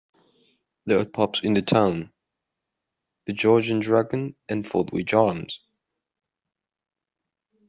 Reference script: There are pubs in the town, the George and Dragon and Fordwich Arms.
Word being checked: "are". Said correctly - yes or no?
yes